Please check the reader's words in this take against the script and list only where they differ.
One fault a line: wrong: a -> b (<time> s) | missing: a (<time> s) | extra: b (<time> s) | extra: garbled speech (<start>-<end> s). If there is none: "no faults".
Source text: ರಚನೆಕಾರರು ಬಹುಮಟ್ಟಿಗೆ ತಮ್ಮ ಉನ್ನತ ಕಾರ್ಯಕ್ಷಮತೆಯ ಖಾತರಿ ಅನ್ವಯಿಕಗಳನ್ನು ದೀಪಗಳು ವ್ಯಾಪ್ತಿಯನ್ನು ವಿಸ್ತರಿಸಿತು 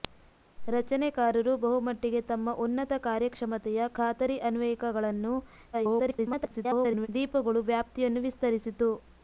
extra: garbled speech (5.7-7.1 s)